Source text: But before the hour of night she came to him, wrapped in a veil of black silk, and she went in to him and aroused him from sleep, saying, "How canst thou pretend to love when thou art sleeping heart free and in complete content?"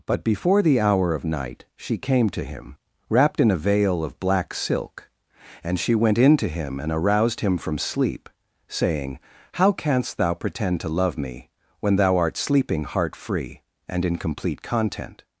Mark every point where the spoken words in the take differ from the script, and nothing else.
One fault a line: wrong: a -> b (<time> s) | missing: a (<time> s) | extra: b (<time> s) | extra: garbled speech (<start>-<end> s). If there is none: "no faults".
extra: me (11.2 s)